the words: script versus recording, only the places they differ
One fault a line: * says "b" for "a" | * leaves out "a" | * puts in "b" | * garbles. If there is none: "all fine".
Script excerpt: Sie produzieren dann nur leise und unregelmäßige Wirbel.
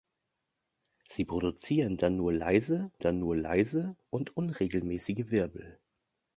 * puts in "dann nur leise"